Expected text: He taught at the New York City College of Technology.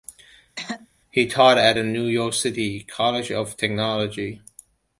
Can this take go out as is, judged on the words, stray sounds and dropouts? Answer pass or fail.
fail